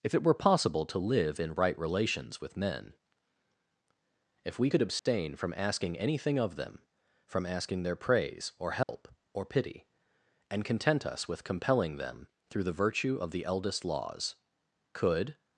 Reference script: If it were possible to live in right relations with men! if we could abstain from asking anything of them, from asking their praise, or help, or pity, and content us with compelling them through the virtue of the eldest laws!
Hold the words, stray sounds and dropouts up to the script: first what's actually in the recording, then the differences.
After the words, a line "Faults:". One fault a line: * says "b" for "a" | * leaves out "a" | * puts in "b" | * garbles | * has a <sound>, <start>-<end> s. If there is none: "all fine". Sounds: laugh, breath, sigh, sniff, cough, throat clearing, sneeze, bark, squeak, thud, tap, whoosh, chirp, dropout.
If it were possible to live in right relations with men! if we could abstain from asking anything of them, from asking their praise, or help, or pity, and content us with compelling them through the virtue of the eldest laws! Could
Faults:
* has a dropout, 5.0-5.1 s
* has a dropout, 8.8-8.9 s
* puts in "Could"